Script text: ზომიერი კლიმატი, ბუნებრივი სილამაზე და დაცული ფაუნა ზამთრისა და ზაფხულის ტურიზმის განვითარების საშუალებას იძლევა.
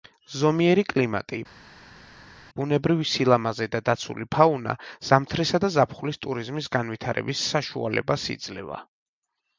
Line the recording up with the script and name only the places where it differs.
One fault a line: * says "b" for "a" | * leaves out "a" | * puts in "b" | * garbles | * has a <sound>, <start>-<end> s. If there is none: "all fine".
all fine